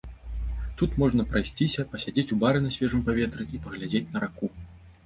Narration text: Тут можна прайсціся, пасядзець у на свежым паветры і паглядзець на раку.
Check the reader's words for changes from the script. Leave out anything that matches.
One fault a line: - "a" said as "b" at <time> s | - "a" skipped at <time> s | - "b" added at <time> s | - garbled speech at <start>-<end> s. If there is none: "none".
- "бары" added at 2.5 s